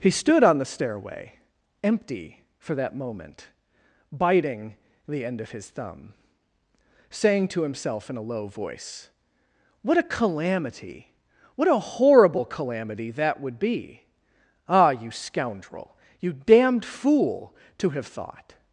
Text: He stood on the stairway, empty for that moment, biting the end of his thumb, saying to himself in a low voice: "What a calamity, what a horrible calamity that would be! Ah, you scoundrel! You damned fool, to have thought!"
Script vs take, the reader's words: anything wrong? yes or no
no